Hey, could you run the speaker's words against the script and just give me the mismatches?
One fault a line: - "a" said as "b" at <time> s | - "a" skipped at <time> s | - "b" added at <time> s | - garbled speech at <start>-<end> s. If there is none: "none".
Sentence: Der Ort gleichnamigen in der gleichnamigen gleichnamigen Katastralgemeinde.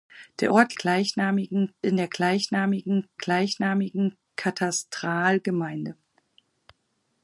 none